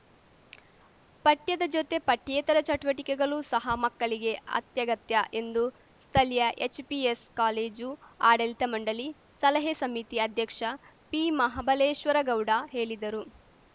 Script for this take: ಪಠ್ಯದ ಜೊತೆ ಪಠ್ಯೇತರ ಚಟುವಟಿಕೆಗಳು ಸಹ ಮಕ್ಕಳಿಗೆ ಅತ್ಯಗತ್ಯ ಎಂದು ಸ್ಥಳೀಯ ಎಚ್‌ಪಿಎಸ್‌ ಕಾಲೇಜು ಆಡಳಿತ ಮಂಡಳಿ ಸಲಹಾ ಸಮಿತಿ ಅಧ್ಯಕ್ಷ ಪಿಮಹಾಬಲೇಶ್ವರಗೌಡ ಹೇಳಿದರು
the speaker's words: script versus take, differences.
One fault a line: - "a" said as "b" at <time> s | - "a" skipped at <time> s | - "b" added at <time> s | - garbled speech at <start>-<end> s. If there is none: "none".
none